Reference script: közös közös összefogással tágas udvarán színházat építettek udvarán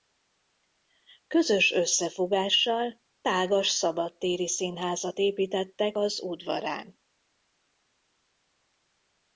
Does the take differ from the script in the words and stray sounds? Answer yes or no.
yes